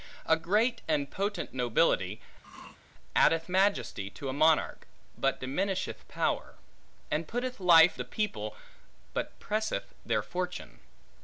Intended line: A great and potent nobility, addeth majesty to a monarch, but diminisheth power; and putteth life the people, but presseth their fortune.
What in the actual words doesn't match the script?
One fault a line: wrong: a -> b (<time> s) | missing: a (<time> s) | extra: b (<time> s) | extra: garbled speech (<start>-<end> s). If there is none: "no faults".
no faults